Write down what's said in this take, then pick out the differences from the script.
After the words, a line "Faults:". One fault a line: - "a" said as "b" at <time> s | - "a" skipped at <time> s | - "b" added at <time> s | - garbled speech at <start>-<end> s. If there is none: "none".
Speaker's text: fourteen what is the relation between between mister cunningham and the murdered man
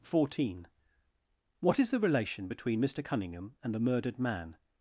fourteen what is the relation between mister cunningham and the murdered man
Faults:
- "between" skipped at 2.8 s